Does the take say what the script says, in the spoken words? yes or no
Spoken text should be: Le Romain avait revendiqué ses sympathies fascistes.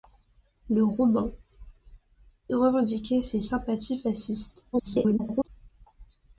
no